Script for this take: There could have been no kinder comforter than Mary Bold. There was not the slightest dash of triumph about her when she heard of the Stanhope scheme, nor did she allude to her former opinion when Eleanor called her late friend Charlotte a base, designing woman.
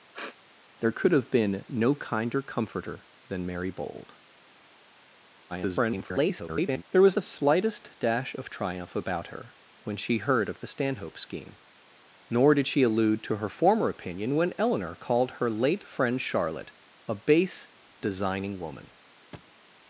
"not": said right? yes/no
no